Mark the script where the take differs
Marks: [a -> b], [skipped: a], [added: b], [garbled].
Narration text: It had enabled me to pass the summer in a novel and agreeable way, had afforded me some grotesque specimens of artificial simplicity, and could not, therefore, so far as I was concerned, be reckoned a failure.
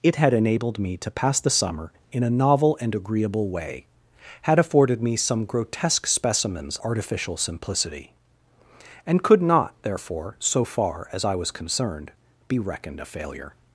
It had enabled me to pass the summer in a novel and agreeable way, had afforded me some grotesque specimens [skipped: of] artificial simplicity, and could not, therefore, so far as I was concerned, be reckoned a failure.